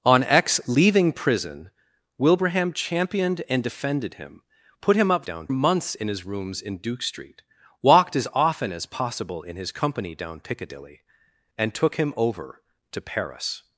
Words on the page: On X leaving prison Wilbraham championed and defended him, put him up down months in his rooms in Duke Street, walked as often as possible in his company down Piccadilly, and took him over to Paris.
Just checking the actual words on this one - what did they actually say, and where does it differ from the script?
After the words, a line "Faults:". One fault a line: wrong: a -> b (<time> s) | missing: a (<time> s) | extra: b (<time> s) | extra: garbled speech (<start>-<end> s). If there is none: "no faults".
On X leaving prison Wilbraham championed and defended him, put him up down months in his rooms in Duke Street, walked as often as possible in his company down Piccadilly, and took him over to Paris.
Faults:
no faults